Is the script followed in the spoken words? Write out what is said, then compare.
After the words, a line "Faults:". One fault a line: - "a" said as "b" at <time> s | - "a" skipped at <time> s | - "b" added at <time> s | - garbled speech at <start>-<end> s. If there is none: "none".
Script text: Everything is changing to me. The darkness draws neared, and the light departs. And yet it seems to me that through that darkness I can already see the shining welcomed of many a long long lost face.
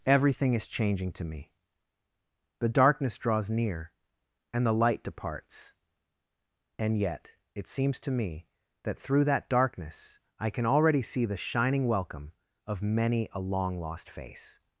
Everything is changing to me. The darkness draws near, and the light departs. And yet it seems to me that through that darkness I can already see the shining welcome of many a long lost face.
Faults:
- "neared" said as "near" at 3.5 s
- "welcomed" said as "welcome" at 11.9 s
- "long" skipped at 13.8 s